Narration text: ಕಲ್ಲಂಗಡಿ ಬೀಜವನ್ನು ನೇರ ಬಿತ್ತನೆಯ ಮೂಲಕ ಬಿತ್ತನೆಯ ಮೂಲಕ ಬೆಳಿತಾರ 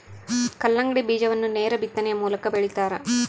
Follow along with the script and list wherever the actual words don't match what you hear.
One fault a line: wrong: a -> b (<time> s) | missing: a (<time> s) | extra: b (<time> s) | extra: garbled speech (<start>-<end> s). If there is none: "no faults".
missing: ಬಿತ್ತನೆಯ ಮೂಲಕ (2.5 s)